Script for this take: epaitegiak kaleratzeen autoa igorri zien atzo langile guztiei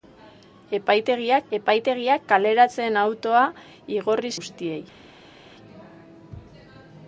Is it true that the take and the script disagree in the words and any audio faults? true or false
true